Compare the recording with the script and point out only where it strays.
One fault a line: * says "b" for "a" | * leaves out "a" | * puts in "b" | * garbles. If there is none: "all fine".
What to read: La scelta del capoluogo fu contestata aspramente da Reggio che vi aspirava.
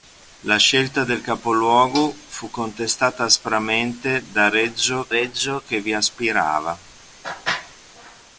* puts in "Reggio"